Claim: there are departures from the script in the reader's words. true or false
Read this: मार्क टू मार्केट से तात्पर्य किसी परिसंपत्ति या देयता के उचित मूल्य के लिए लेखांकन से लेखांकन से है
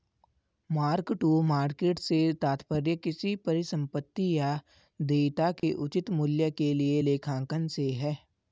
true